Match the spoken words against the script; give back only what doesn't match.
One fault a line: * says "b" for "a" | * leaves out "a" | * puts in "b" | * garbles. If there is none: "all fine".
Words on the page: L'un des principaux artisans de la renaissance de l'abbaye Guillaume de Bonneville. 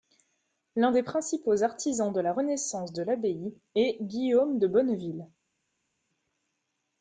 * puts in "est"